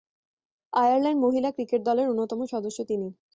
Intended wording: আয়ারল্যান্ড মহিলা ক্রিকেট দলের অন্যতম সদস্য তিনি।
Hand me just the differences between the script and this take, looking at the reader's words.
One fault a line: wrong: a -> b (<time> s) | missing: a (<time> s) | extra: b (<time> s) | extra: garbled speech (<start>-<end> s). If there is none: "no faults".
no faults